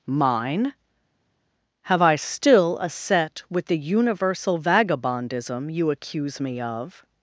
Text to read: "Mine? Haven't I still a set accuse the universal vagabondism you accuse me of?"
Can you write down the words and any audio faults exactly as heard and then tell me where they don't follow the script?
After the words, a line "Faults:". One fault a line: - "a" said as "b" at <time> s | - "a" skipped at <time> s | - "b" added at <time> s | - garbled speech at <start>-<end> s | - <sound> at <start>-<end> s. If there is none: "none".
"Mine? Have I still a set with the universal vagabondism you accuse me of?"
Faults:
- "Haven't" said as "Have" at 1.9 s
- "accuse" said as "with" at 3.5 s